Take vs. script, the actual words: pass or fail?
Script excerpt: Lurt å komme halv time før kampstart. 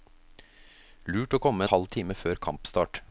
pass